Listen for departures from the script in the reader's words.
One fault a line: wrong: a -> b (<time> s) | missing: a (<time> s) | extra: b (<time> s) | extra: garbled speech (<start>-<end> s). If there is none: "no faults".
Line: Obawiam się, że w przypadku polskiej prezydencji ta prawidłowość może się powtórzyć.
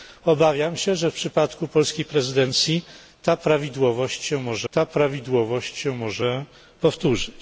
extra: ta prawidłowość może (4.7 s)